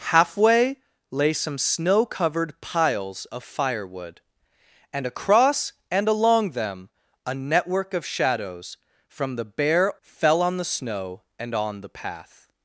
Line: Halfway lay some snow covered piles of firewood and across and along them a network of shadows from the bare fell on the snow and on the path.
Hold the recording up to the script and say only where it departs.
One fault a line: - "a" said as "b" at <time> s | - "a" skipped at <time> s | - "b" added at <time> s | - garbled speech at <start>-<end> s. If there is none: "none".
none